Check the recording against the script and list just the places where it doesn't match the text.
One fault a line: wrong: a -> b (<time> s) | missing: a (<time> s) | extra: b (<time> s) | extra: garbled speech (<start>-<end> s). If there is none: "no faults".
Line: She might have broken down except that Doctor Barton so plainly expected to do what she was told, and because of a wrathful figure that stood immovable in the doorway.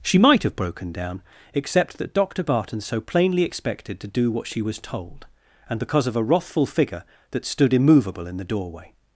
no faults